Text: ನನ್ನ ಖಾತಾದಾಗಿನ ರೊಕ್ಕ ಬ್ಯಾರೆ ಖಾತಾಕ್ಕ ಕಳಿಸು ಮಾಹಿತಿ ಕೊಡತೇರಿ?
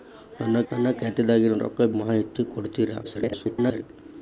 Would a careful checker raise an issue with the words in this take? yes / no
yes